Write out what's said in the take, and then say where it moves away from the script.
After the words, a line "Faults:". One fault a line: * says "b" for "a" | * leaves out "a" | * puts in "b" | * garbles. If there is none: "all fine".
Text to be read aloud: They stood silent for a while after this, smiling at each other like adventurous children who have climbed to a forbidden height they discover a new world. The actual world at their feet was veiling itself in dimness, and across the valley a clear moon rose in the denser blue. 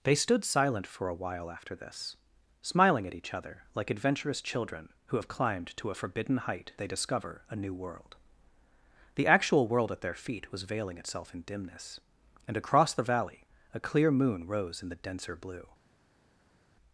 They stood silent for a while after this, smiling at each other like adventurous children who have climbed to a forbidden height they discover a new world. The actual world at their feet was veiling itself in dimness, and across the valley a clear moon rose in the denser blue.
Faults:
all fine